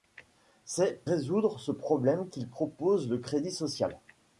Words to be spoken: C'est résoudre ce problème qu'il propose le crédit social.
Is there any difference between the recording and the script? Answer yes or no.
no